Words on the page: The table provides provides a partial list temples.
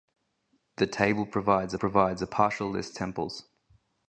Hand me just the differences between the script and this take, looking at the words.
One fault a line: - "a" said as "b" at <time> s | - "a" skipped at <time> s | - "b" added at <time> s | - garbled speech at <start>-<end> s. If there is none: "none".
none